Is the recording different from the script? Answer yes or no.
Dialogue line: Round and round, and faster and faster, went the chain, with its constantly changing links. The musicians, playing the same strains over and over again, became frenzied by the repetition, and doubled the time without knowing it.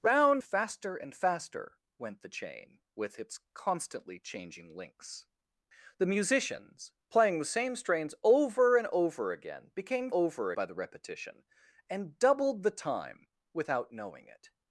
yes